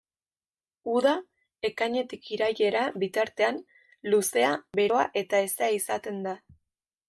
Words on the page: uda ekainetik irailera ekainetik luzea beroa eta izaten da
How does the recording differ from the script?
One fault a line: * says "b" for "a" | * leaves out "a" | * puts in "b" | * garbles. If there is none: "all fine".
* says "bitartean" for "ekainetik"
* puts in "hezea"